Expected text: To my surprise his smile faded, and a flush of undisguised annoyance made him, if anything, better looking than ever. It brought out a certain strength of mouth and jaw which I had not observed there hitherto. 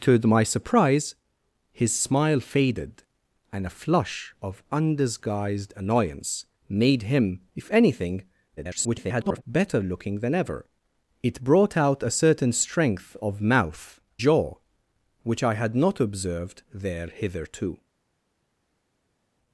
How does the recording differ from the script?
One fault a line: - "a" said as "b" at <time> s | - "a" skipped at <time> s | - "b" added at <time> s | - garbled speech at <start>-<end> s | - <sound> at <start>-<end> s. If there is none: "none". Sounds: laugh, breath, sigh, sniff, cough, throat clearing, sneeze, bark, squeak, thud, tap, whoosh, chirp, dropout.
- garbled speech at 8.6-9.4 s
- "and" skipped at 14.0 s